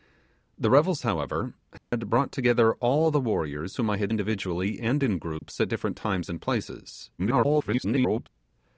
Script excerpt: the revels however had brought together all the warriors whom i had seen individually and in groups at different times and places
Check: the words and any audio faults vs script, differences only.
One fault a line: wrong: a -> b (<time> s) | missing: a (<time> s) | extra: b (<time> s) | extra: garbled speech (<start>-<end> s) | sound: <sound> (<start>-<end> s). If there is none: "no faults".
sound: dropout (1.8-1.9 s)
missing: seen (4.1 s)
sound: dropout (5.4-5.4 s)
extra: garbled speech (7.2-8.3 s)